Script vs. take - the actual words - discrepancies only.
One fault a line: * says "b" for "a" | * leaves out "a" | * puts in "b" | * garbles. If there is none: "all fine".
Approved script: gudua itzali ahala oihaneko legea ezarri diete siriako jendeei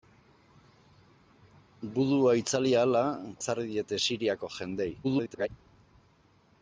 * leaves out "oihaneko legea"
* garbles